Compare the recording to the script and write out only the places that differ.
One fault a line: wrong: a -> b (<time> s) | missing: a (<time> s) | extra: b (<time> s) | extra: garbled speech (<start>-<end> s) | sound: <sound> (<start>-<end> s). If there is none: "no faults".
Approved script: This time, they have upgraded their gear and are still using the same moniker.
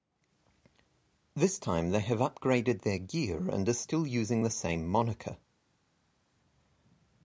no faults